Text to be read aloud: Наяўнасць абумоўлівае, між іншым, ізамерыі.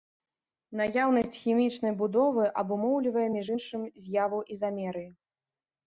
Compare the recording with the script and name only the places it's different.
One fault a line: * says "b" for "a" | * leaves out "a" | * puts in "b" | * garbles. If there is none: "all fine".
* puts in "хімічнай будовы"
* puts in "з'яву"